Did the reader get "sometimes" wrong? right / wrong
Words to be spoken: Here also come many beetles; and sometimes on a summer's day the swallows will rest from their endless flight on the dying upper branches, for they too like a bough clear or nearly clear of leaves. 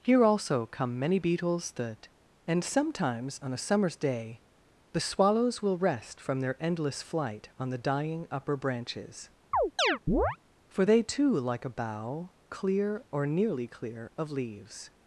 right